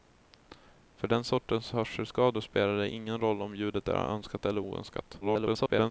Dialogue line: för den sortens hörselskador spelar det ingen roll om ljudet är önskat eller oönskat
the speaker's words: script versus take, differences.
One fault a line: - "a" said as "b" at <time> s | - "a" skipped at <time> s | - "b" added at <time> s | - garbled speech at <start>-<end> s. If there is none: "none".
- garbled speech at 5.2-5.9 s